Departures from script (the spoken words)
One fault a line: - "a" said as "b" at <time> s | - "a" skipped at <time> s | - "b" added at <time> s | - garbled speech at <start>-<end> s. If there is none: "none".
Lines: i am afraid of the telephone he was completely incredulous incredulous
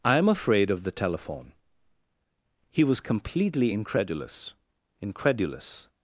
none